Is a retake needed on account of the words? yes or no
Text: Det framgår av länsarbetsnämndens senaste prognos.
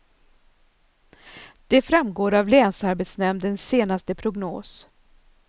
no